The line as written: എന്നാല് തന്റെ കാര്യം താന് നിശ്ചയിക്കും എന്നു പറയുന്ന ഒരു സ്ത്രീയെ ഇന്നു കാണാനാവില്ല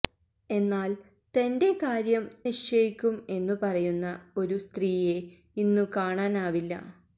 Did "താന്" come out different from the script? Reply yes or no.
yes